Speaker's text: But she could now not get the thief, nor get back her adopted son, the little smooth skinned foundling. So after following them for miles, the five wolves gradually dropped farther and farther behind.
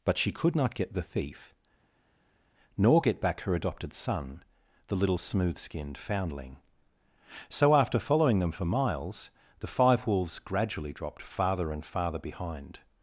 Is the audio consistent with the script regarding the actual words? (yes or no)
no